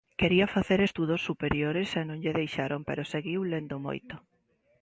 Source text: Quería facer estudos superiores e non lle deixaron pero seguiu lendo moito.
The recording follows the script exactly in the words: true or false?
true